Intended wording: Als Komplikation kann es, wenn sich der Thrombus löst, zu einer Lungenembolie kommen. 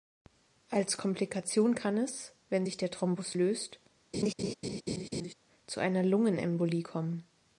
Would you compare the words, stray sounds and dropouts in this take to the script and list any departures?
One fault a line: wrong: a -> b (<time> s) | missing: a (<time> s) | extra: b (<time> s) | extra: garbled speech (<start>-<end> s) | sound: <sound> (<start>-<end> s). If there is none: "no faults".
sound: laugh (4.1-5.3 s)